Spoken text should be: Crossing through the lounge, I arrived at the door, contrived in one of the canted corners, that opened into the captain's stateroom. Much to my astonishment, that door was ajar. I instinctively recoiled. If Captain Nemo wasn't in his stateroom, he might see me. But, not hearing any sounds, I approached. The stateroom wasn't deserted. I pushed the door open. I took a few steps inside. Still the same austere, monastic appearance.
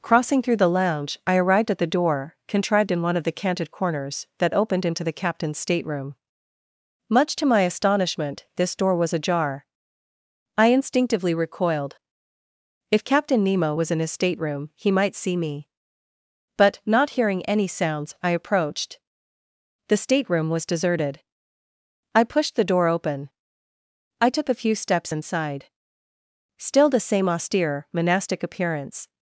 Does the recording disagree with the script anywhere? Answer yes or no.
yes